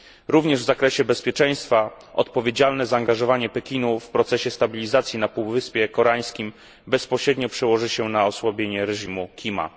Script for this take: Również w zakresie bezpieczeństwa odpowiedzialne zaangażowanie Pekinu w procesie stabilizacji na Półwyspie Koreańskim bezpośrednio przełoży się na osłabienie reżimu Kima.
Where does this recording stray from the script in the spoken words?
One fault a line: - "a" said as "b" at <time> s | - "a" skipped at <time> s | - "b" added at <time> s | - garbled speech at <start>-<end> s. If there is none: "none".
none